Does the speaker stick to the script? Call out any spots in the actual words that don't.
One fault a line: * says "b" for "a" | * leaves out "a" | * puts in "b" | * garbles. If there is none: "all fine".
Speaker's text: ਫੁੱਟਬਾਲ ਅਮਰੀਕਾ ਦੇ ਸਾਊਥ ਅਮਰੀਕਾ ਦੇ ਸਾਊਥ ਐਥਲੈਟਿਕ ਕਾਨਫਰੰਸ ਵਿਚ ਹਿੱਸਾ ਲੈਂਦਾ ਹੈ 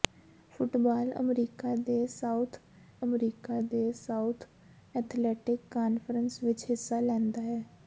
all fine